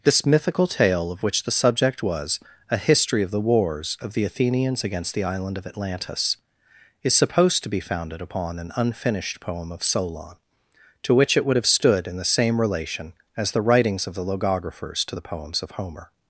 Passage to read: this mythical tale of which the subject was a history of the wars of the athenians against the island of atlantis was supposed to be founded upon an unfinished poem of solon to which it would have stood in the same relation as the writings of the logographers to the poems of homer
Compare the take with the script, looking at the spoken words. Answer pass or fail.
fail